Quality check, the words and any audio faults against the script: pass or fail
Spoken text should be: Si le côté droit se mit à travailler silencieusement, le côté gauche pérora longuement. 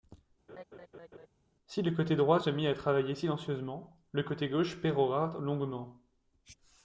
fail